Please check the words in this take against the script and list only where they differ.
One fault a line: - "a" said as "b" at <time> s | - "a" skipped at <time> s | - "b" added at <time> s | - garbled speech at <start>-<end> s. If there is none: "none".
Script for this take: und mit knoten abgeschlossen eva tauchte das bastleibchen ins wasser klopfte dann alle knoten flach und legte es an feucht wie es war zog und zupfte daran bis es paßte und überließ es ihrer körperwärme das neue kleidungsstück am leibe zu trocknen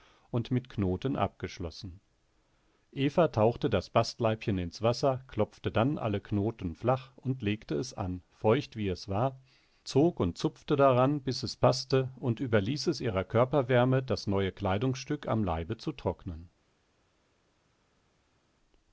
none